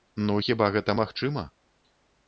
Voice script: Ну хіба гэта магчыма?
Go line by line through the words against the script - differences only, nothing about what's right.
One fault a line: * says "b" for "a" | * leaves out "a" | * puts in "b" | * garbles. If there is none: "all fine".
all fine